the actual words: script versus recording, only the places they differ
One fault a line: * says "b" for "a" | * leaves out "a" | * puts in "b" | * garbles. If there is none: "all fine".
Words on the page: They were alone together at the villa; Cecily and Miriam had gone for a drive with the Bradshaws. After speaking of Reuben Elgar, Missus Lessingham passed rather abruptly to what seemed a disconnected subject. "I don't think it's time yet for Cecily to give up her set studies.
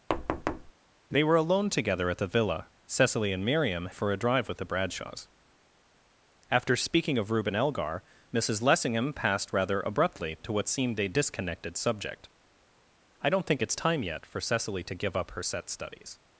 * leaves out "had gone"